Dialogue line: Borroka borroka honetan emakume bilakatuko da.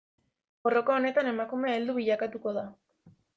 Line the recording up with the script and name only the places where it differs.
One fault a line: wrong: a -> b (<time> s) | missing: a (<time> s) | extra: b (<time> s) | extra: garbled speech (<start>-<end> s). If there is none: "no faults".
missing: borroka (0.9 s)
extra: heldu (1.8 s)